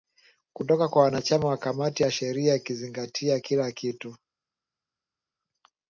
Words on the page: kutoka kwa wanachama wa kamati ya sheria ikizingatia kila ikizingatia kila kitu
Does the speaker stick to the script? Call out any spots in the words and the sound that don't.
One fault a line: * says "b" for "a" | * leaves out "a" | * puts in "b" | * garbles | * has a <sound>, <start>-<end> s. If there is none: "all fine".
* leaves out "ikizingatia kila"